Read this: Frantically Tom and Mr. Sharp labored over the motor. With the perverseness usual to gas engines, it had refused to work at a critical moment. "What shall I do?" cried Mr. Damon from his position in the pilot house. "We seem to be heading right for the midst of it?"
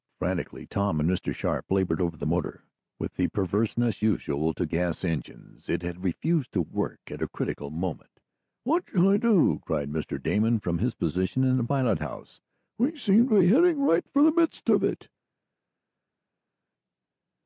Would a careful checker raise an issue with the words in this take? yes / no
no